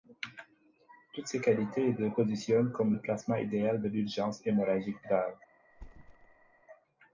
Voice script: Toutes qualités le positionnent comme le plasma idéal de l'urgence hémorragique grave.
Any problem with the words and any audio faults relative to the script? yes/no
yes